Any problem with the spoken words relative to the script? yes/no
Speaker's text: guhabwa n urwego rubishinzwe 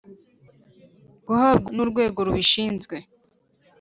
no